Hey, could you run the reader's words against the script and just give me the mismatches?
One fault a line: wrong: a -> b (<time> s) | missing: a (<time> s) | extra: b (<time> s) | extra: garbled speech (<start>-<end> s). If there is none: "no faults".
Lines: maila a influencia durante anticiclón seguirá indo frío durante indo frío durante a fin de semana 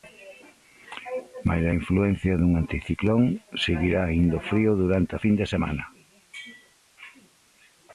wrong: durante -> dun (2.4 s)
missing: indo frío durante (5.1 s)